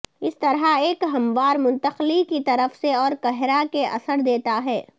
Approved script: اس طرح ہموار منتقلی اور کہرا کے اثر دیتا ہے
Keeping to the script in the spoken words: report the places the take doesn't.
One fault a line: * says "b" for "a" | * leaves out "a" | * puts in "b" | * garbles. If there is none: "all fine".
* puts in "ایک"
* puts in "کی طرف سے"